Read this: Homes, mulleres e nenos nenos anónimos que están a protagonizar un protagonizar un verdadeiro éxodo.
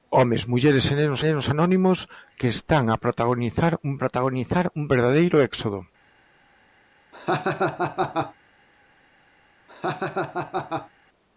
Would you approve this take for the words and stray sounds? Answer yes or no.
no